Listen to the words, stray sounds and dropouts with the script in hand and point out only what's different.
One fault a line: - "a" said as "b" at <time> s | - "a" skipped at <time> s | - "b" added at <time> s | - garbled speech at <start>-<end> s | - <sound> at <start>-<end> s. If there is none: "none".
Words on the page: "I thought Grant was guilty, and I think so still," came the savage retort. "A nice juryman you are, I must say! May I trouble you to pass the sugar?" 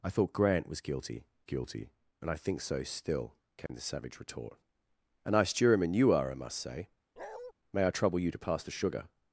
- "guilty" added at 1.4 s
- dropout at 3.7-3.7 s
- bark at 7.2-7.5 s